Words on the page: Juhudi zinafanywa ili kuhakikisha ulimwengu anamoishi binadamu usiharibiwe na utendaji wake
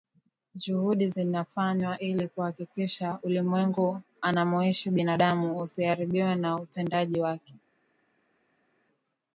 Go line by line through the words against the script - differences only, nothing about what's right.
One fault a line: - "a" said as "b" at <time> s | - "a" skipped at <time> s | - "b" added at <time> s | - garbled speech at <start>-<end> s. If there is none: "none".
none